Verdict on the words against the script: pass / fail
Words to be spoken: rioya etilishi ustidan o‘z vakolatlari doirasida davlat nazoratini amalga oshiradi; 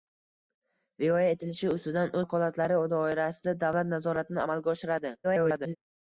fail